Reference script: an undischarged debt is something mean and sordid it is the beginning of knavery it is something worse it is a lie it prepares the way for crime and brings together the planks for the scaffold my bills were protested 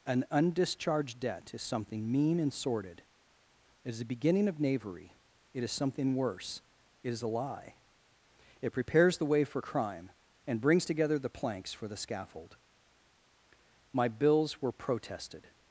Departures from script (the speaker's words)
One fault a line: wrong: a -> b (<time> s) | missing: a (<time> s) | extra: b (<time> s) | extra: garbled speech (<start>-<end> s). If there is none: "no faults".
no faults